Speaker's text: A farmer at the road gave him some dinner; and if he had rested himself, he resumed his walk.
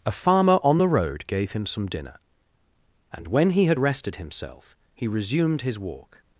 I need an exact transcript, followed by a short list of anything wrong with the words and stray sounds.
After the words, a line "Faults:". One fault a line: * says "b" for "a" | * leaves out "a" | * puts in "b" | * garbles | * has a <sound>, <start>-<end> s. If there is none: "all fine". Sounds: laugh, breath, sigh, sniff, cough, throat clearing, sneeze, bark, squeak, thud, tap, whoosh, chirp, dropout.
A farmer on the road gave him some dinner; and when he had rested himself, he resumed his walk.
Faults:
* says "on" for "at"
* says "when" for "if"